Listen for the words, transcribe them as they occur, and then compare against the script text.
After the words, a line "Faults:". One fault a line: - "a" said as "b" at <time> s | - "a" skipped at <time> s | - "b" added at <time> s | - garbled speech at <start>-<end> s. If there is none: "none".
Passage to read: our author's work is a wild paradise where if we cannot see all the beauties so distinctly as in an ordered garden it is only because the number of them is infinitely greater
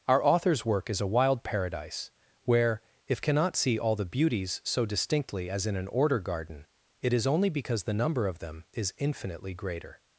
our author's work is a wild paradise where if cannot see all the beauties so distinctly as in an order garden it is only because the number of them is infinitely greater
Faults:
- "we" skipped at 3.2 s
- "ordered" said as "order" at 5.9 s